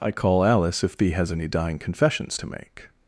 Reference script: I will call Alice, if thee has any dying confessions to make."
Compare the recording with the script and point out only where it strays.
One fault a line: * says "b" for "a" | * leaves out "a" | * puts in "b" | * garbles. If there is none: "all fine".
* leaves out "will"